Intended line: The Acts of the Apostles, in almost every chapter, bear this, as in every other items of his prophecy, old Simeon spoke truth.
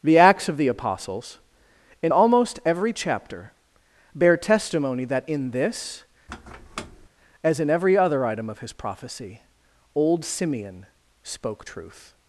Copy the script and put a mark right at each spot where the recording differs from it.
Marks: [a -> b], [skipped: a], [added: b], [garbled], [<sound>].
The Acts of the Apostles, in almost every chapter, bear [added: testimony that in] this, [squeak] as in every other [items -> item] of his prophecy, old Simeon spoke truth.